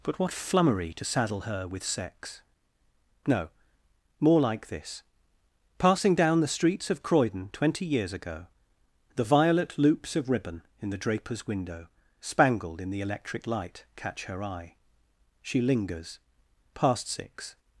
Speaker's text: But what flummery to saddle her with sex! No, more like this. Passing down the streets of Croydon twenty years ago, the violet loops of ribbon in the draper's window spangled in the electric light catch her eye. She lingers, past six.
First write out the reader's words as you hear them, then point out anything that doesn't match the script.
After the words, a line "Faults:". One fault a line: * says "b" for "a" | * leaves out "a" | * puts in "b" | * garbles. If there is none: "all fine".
But what flummery to saddle her with sex! No, more like this. Passing down the streets of Croydon twenty years ago, the violet loops of ribbon in the draper's window spangled in the electric light catch her eye. She lingers, past six.
Faults:
all fine